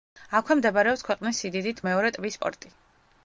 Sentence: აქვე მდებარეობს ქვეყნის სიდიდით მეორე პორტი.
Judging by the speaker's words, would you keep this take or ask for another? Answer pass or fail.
fail